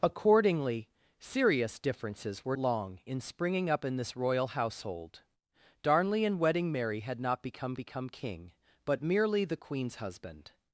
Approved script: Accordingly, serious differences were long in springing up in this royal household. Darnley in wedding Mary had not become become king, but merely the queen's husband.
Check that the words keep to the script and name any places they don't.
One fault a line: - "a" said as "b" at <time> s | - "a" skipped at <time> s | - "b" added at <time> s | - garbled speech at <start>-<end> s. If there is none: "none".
none